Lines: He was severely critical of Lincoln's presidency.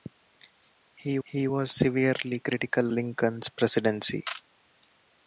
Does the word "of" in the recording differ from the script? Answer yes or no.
yes